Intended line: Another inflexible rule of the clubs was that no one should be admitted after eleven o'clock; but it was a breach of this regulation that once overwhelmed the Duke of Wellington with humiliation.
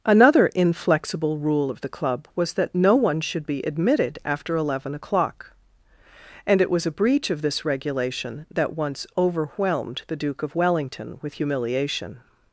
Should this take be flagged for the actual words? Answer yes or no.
yes